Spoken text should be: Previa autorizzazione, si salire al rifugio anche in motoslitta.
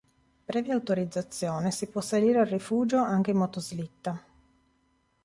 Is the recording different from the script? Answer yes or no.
yes